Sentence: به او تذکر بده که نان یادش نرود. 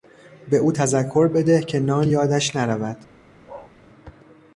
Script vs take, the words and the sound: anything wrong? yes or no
yes